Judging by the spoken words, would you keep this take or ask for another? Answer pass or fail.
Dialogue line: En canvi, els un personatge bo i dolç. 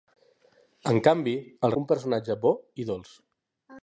pass